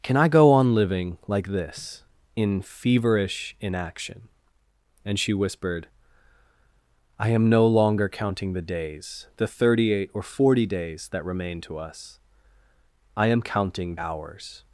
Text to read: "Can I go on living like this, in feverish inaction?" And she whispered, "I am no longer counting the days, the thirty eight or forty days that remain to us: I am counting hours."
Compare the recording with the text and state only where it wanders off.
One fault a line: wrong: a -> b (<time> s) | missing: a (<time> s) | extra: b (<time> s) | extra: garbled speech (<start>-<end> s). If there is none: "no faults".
no faults